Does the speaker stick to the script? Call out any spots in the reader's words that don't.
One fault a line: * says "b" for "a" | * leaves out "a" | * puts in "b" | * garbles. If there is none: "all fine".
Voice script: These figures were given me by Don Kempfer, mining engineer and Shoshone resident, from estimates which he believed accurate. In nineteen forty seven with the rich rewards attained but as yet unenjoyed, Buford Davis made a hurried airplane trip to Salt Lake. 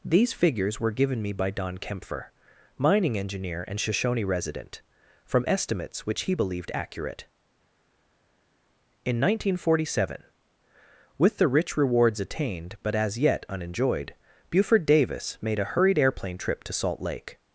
all fine